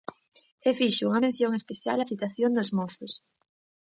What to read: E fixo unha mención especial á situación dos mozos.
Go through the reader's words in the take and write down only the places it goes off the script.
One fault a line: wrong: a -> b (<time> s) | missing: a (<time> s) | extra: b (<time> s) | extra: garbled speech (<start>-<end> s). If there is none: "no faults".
no faults